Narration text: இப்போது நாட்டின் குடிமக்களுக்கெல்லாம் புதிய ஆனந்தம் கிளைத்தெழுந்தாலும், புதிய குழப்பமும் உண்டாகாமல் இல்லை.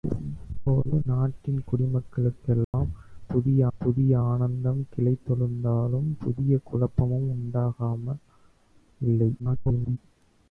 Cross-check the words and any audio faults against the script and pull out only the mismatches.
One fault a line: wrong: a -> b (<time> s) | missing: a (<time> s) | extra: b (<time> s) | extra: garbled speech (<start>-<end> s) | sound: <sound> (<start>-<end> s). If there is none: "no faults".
sound: dropout (2.6-2.7 s)
extra: புதிய (3.8 s)
extra: garbled speech (9.4-10.0 s)